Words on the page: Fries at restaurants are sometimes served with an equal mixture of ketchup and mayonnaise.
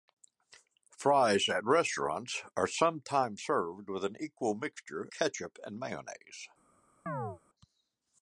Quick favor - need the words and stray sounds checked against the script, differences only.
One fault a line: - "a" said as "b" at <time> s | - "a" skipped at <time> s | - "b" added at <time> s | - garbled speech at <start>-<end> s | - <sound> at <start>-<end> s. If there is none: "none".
- "of" skipped at 5.1 s
- chirp at 7.1-7.4 s